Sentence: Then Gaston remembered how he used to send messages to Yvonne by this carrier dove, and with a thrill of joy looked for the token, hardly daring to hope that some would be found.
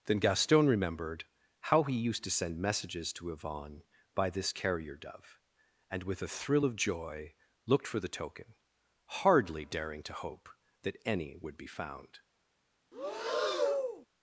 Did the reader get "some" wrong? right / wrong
wrong